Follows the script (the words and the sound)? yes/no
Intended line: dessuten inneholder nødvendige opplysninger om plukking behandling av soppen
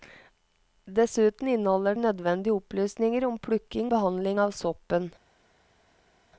yes